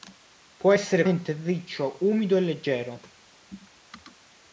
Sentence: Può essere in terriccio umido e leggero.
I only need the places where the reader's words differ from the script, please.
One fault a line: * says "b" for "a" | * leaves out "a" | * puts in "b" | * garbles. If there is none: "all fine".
all fine